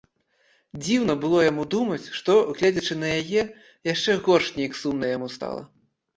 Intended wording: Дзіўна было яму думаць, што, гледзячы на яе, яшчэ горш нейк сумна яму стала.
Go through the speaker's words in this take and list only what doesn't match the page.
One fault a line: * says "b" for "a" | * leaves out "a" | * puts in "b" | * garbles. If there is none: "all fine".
all fine